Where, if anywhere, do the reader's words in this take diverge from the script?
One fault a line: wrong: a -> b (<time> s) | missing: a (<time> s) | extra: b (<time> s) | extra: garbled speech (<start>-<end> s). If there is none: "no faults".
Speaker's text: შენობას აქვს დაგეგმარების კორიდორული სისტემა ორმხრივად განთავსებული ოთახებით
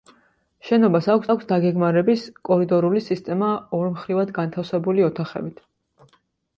extra: აქვს (1.3 s)